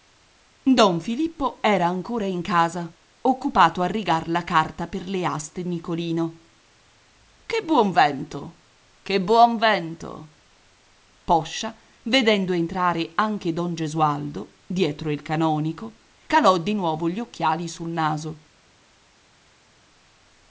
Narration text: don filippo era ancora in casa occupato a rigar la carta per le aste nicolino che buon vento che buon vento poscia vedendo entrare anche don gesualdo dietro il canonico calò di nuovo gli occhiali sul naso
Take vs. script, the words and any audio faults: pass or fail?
pass